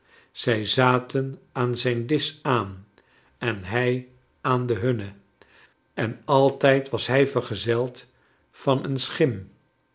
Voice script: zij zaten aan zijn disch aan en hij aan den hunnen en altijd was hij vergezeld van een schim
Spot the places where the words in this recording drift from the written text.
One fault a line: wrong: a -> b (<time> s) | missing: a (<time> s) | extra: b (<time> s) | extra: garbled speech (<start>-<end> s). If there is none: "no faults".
no faults